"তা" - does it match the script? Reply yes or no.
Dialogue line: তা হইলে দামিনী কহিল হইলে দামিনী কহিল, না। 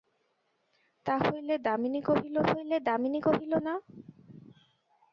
yes